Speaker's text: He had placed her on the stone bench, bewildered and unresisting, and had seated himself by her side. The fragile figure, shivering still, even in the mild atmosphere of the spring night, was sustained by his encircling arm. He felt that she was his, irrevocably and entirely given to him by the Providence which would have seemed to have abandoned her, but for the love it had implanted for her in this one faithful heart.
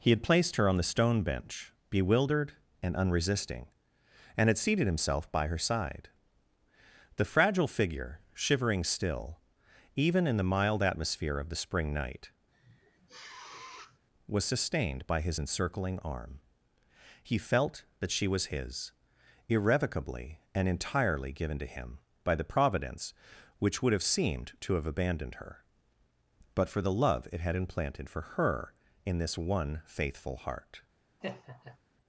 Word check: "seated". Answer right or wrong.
right